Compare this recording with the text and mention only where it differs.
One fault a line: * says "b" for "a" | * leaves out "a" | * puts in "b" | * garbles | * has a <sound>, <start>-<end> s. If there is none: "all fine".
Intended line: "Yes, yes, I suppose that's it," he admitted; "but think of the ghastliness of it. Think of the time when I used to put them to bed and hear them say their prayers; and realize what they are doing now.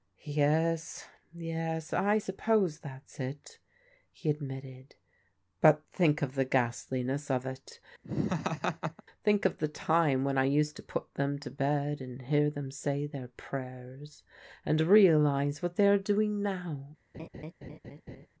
* has a laugh, 8.0-9.0 s
* has a laugh, 17.1-18.3 s